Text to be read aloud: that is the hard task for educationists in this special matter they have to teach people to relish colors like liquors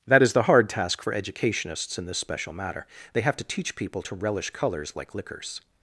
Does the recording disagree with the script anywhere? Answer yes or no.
no